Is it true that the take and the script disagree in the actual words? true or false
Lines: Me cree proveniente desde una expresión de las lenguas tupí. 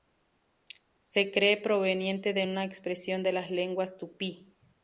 true